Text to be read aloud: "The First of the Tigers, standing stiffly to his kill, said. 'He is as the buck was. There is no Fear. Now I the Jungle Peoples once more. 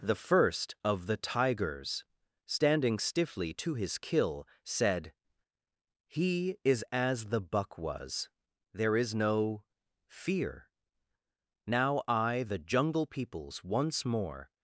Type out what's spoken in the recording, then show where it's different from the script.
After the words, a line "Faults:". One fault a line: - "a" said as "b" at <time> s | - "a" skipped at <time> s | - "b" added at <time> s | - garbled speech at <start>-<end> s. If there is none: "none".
"The First of the Tigers, standing stiffly to his kill, said. 'He is as the buck was. There is no Fear. Now I the Jungle Peoples once more.
Faults:
none